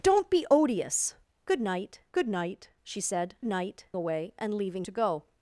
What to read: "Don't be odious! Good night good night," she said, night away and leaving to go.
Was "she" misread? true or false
false